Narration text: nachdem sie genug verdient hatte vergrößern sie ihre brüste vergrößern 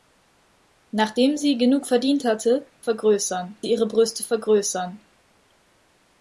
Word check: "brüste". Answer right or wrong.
right